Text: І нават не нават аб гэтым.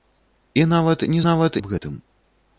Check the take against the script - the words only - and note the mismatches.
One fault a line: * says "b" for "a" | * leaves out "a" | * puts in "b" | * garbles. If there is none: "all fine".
all fine